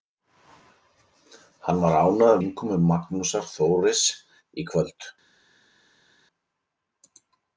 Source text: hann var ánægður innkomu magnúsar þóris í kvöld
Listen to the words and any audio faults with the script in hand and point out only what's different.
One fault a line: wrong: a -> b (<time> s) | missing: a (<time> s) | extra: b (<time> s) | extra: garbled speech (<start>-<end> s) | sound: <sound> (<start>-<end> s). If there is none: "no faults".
no faults